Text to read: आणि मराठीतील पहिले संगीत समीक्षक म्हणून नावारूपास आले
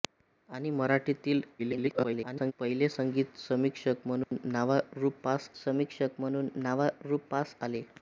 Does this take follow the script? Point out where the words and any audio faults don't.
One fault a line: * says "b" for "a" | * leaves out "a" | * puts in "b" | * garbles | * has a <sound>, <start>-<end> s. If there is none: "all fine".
* garbles
* has a dropout, 4.2-4.3 s
* puts in "समीक्षक म्हणून नावारूपास"